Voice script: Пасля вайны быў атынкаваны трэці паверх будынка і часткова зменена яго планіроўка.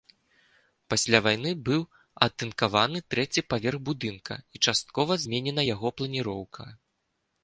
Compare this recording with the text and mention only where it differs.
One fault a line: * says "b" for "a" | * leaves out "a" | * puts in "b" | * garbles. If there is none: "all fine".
all fine